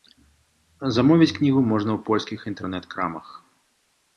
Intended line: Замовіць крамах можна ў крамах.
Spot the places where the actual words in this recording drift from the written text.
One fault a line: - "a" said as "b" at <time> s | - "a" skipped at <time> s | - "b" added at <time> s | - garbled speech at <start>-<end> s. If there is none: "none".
- "крамах" said as "кнігу" at 1.4 s
- "польскіх інтэрнэт" added at 2.1 s